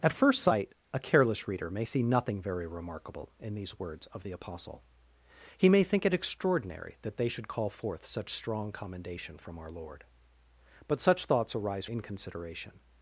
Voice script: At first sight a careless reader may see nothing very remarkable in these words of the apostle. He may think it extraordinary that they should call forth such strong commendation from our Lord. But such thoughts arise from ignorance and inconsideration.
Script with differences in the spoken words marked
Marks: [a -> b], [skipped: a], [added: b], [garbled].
At first sight a careless reader may see nothing very remarkable in these words of the apostle. He may think it extraordinary that they should call forth such strong commendation from our Lord. But such thoughts arise [skipped: from ignorance and] inconsideration.